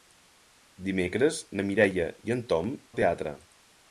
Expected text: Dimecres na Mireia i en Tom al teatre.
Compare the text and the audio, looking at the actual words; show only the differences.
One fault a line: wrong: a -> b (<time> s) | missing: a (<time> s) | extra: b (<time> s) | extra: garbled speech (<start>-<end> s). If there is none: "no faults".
no faults